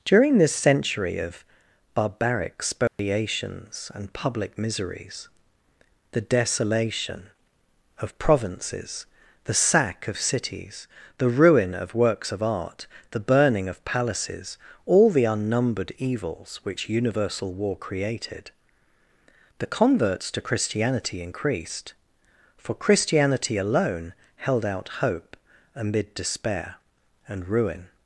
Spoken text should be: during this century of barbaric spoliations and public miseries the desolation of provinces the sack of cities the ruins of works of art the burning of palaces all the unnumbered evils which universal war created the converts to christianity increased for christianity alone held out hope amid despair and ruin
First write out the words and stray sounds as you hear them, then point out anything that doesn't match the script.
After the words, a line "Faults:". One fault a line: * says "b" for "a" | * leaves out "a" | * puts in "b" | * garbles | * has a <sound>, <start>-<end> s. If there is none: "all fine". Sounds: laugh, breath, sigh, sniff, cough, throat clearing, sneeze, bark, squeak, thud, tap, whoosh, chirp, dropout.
during this century of barbaric spoliations and public miseries the desolation of provinces the sack of cities the ruin of works of art the burning of palaces all the unnumbered evils which universal war created the converts to christianity increased for christianity alone held out hope amid despair and ruin
Faults:
* has a dropout, 2.9-3.0 s
* says "ruin" for "ruins"